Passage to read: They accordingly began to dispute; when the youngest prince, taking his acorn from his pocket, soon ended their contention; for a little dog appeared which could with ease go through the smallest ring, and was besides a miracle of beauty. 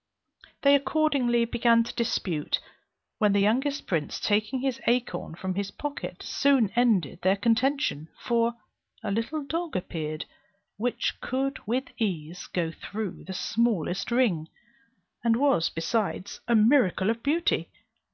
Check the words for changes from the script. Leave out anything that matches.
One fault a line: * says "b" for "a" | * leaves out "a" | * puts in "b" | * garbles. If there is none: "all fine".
all fine